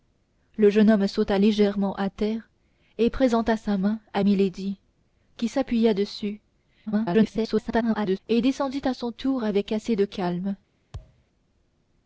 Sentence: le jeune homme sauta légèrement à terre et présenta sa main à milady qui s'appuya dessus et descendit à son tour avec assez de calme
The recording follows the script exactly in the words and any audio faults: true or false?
false